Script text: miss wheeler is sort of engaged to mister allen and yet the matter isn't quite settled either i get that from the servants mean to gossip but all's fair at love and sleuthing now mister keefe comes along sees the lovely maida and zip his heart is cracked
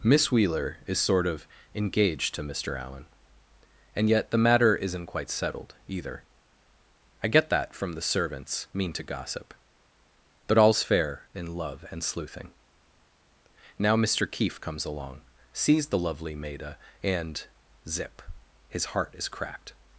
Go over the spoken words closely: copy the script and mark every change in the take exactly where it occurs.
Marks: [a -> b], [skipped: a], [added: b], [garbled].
miss wheeler is sort of engaged to mister allen and yet the matter isn't quite settled either i get that from the servants mean to gossip but all's fair [at -> in] love and sleuthing now mister keefe comes along sees the lovely maida and zip his heart is cracked